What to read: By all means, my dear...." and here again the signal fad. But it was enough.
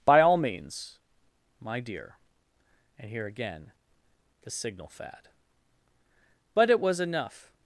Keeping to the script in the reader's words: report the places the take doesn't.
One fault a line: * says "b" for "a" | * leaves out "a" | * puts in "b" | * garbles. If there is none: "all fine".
all fine